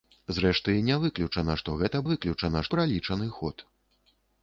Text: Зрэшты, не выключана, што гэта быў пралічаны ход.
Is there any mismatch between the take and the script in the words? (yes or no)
yes